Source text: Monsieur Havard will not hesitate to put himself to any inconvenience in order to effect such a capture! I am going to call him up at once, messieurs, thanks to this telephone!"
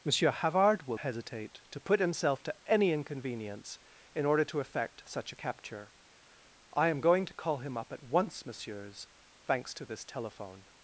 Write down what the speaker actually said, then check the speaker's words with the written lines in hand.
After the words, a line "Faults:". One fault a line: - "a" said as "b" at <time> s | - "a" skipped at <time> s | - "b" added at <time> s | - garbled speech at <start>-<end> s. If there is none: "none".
Monsieur Havard will hesitate to put himself to any inconvenience in order to effect such a capture! I am going to call him up at once, messieurs, thanks to this telephone!"
Faults:
- "not" skipped at 1.0 s